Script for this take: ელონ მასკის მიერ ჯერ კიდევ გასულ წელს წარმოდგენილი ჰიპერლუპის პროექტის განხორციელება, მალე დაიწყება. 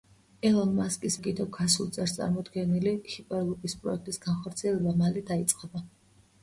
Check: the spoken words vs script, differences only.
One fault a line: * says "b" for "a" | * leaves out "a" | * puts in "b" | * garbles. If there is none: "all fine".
* leaves out "მიერ ჯერ"